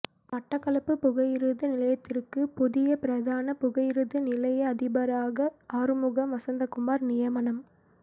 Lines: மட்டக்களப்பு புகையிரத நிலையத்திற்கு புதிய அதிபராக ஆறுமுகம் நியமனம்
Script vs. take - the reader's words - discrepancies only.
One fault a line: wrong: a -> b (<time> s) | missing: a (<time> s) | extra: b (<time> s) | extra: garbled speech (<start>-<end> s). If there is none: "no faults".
extra: பிரதான புகையிரத நிலைய (3.0 s)
extra: வசந்தகுமார் (6.3 s)